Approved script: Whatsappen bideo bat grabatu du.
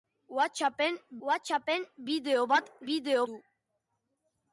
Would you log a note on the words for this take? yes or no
yes